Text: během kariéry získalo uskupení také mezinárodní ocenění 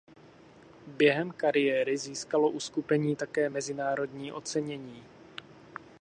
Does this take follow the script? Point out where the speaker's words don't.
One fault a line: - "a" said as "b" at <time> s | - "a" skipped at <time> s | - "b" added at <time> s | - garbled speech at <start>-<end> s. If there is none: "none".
none